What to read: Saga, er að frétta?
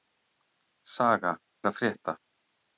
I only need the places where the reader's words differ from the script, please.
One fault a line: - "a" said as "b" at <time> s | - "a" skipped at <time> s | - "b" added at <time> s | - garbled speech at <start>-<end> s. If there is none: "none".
none